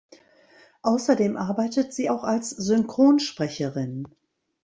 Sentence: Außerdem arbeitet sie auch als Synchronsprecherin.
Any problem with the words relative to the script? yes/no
no